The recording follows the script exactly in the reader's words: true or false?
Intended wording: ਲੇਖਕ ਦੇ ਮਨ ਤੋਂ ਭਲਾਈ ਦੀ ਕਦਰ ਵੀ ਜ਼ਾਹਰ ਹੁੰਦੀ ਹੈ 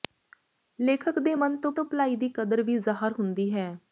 false